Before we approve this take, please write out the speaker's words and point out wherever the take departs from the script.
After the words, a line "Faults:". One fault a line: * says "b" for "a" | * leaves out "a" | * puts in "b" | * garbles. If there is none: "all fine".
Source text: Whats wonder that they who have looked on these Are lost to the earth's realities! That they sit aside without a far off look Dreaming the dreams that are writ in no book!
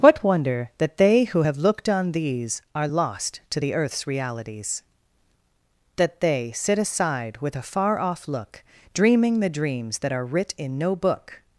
What wonder that they who have looked on these Are lost to the earth's realities! That they sit aside with a far off look Dreaming the dreams that are writ in no book!
Faults:
* says "What" for "Whats"
* says "with" for "without"